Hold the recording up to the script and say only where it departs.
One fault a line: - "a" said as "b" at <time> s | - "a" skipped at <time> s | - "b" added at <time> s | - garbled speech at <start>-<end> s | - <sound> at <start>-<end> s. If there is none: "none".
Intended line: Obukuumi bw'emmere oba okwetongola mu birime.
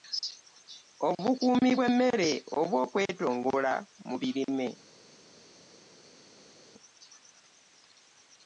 none